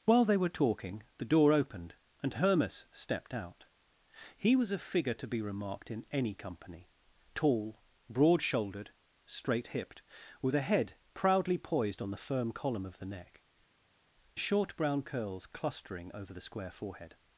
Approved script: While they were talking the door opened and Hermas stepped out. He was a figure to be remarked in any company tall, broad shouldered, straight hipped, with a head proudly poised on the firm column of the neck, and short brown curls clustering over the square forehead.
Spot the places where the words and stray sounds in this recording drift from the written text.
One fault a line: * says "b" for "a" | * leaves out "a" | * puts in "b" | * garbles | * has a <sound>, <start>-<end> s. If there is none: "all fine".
* leaves out "and"